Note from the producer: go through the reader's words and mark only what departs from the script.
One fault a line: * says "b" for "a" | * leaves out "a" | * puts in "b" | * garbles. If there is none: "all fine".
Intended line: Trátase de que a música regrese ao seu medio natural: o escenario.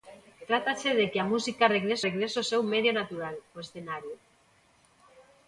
* puts in "regrese"